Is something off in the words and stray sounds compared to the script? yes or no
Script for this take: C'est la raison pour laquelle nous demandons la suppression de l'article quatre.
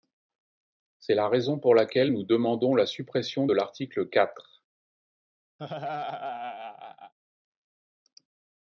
yes